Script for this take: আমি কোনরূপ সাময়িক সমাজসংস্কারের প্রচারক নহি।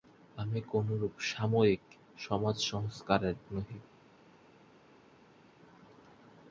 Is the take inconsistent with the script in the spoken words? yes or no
yes